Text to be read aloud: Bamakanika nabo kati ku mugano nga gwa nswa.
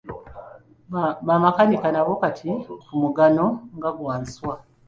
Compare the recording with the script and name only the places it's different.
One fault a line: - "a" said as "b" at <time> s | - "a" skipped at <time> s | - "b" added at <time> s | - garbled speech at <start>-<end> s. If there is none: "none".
none